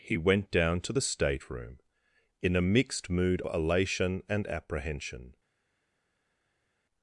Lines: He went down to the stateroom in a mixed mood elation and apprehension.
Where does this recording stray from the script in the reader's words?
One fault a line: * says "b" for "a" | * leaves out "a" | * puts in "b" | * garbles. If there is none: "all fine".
all fine